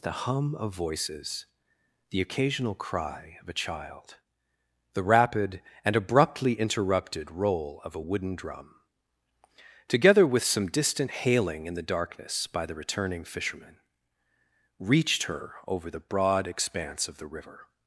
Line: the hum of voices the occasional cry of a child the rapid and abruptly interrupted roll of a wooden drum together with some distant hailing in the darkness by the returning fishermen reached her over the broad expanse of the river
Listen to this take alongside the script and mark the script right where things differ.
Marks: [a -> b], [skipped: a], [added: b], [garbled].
the hum of voices the occasional cry of a child the rapid and abruptly interrupted roll of a wooden drum together with some distant hailing in the darkness by the returning fishermen reached her over the broad expanse of the river